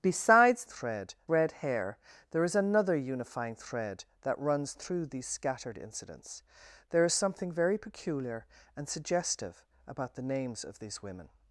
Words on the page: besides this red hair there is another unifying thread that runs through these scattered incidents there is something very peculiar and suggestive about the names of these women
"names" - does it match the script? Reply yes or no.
yes